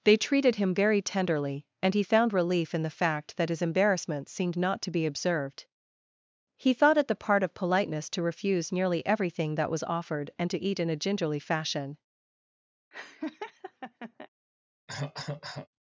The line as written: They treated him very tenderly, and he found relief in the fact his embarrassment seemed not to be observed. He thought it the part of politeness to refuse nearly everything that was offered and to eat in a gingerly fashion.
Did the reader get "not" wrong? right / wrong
right